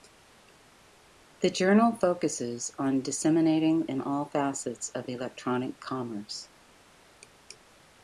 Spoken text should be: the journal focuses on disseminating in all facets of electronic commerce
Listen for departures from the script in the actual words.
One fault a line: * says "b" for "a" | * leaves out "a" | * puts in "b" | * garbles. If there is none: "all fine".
all fine